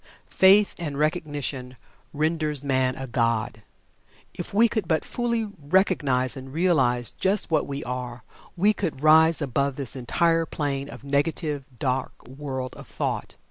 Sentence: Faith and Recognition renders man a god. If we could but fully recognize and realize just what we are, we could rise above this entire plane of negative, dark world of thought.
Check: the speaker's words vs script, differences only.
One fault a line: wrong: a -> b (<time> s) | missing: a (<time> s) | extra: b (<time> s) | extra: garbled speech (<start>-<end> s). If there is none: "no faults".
no faults